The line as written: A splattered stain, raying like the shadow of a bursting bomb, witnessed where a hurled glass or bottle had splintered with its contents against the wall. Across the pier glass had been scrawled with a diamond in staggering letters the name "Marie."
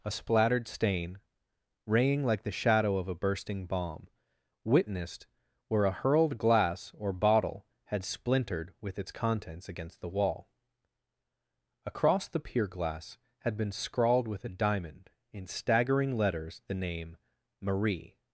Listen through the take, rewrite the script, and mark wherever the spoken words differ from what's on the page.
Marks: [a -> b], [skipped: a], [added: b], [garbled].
A splattered stain, raying like the shadow of a bursting bomb, witnessed where a hurled glass or bottle had splintered with its contents against the wall. Across the pier glass had been scrawled with a diamond in staggering letters the name "Marie."